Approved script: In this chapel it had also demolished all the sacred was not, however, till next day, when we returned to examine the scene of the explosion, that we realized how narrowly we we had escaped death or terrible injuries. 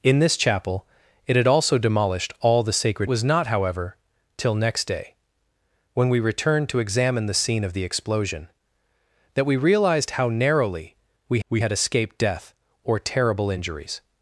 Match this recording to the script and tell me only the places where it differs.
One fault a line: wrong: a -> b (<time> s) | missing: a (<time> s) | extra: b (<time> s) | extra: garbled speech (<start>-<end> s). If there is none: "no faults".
no faults